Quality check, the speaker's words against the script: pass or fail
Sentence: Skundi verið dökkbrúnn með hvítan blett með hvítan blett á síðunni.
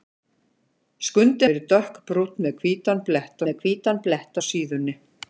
pass